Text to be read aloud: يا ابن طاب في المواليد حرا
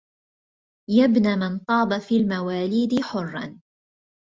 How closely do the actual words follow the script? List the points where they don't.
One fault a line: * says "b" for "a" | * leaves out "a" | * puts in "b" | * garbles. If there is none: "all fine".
* puts in "من"